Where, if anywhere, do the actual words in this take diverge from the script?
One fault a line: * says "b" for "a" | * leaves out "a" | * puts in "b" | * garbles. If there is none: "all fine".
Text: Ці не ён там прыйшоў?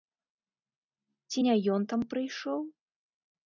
all fine